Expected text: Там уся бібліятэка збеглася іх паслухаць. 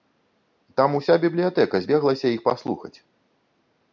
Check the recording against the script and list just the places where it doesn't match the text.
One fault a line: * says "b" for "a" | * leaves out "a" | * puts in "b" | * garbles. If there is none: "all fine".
all fine